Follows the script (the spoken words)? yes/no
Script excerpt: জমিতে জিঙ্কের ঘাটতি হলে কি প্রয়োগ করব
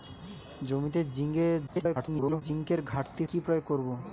no